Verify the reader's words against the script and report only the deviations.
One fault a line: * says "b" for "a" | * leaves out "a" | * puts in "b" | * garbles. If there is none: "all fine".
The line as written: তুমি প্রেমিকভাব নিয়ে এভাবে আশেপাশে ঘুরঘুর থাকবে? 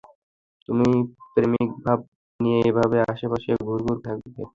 all fine